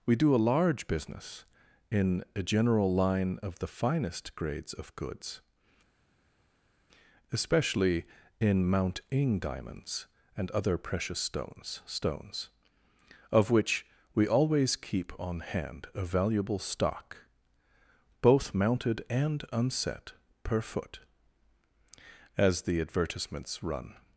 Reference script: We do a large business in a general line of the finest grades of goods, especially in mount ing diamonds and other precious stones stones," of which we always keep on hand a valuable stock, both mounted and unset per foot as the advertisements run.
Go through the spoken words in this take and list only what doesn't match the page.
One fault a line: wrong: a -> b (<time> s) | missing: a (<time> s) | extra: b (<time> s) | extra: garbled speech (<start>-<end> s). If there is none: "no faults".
no faults